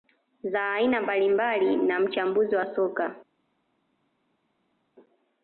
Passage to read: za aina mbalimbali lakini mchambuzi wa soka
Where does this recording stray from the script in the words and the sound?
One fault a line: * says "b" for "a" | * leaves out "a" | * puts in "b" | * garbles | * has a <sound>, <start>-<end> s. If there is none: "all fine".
* says "na" for "lakini"